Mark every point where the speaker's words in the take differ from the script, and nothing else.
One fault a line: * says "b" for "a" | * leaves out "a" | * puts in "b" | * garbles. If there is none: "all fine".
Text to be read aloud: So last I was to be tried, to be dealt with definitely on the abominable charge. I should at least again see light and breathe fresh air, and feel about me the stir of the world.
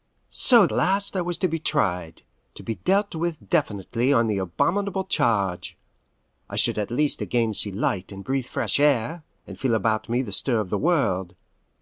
all fine